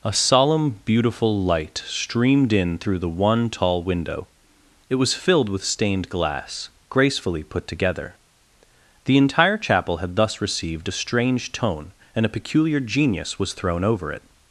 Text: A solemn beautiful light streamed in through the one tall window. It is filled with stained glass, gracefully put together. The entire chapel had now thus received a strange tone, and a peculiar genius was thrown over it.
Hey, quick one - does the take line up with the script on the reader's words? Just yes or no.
no